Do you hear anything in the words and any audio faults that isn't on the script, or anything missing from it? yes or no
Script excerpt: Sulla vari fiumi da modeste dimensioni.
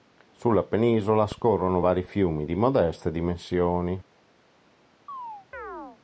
yes